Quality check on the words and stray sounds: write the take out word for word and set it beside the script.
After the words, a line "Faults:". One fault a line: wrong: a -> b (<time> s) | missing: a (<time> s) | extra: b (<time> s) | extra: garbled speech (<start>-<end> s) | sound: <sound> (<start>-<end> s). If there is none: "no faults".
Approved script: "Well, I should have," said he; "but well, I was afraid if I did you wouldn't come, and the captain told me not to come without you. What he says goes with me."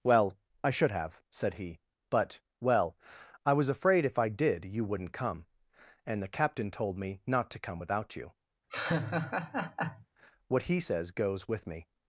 "Well, I should have," said he; "but well, I was afraid if I did you wouldn't come, and the captain told me not to come without you. What he says goes with me."
Faults:
sound: laugh (8.7-10.1 s)